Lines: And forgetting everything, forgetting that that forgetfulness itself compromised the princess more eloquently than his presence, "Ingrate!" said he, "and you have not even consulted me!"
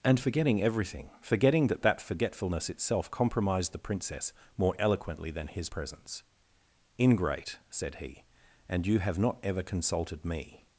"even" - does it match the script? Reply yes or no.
no